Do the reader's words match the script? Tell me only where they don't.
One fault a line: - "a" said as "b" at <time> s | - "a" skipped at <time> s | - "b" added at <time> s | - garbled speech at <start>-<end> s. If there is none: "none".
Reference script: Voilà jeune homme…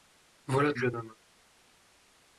none